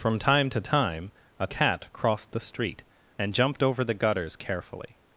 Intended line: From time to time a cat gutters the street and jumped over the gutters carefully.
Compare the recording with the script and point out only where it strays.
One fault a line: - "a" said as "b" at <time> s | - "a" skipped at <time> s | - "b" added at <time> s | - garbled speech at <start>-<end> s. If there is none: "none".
- "gutters" said as "crossed" at 1.9 s